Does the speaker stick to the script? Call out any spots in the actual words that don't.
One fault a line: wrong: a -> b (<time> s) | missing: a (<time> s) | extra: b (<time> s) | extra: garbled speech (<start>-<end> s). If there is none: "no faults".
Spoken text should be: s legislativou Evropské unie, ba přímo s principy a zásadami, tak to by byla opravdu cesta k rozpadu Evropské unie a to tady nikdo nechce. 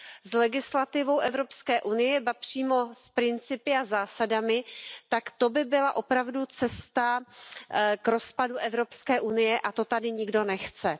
no faults